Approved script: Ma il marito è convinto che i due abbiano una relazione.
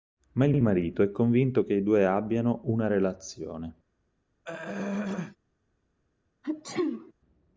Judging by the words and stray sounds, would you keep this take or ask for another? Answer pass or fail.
fail